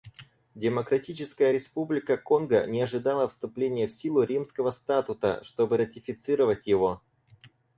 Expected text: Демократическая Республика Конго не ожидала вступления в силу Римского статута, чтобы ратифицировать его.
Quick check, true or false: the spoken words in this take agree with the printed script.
true